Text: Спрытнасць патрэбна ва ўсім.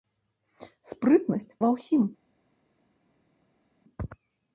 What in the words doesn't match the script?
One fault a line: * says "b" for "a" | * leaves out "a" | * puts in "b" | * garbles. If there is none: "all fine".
* leaves out "патрэбна"